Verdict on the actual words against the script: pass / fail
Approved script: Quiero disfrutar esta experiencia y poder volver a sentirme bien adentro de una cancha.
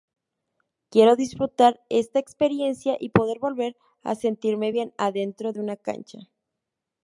pass